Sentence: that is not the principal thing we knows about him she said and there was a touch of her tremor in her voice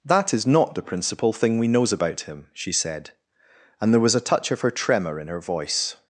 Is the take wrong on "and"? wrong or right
right